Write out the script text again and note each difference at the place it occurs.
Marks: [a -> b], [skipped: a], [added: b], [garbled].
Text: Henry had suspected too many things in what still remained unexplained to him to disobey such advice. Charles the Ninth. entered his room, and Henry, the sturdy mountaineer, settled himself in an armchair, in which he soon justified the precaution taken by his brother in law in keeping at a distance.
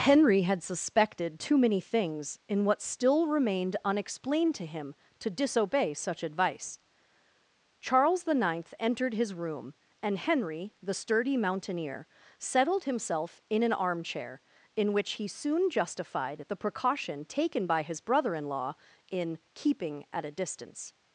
Henry had suspected too many things in what still remained unexplained to him to disobey such advice. Charles the Ninth. entered his room, and Henry, the sturdy mountaineer, settled himself in an armchair, in which he soon justified the precaution taken by his brother in law in keeping at a distance.